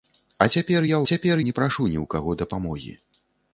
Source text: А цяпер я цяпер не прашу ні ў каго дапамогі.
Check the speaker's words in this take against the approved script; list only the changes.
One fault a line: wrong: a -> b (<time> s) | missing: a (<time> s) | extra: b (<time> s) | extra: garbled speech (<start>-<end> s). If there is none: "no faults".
no faults